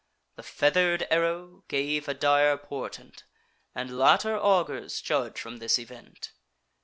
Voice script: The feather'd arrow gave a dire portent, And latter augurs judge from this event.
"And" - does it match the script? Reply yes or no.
yes